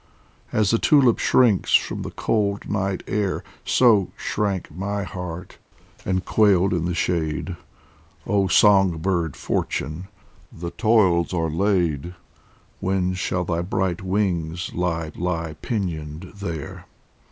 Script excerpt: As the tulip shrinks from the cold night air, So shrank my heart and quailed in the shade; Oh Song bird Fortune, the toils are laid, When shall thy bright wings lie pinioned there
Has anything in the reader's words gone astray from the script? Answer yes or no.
yes